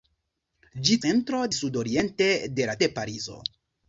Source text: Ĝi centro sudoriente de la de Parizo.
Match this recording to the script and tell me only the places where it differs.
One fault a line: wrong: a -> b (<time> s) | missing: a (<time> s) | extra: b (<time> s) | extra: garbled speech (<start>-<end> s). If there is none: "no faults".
no faults